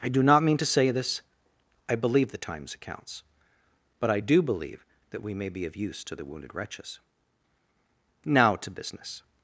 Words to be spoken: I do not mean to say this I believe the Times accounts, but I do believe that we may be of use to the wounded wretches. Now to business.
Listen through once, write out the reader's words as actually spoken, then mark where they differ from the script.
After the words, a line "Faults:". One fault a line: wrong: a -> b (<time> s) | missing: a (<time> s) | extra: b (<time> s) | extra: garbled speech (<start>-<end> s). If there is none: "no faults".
I do not mean to say this I believe the Times accounts, but I do believe that we may be of use to the wounded wretches. Now to business.
Faults:
no faults